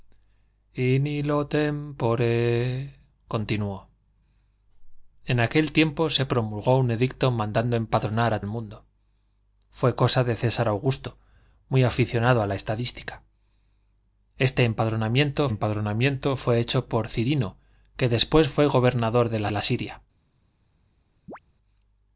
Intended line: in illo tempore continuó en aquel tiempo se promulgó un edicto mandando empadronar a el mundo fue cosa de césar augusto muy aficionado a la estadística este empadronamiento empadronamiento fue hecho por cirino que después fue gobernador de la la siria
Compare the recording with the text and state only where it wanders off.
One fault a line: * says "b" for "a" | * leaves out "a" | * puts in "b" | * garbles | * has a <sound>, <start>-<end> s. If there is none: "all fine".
* has a chirp, 21.3-21.4 s